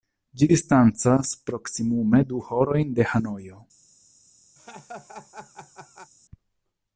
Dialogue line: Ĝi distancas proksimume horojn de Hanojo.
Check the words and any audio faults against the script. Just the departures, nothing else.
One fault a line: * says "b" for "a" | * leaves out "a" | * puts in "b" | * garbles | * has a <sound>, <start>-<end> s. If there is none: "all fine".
* puts in "du"
* has a laugh, 4.6-6.1 s